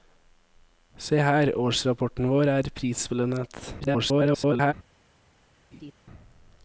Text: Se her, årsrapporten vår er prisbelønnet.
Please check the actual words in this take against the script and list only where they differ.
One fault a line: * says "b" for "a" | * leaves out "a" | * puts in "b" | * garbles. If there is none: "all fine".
* garbles